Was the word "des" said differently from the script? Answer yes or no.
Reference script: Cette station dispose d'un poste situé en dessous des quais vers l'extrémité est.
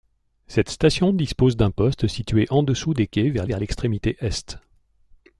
no